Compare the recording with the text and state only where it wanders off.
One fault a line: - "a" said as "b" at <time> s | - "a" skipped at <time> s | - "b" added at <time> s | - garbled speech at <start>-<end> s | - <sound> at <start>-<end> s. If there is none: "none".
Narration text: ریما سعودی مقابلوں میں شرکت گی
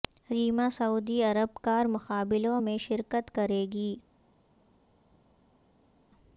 - "عرب کار" added at 1.2 s
- "کریں" added at 3.3 s